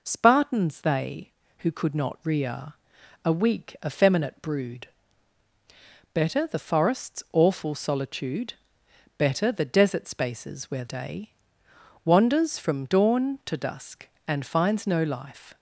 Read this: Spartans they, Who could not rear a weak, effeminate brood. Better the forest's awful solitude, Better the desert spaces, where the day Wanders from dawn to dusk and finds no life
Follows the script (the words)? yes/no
no